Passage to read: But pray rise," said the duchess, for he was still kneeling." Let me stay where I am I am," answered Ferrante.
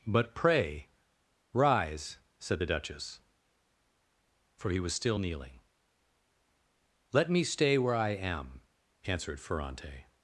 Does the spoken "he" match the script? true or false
true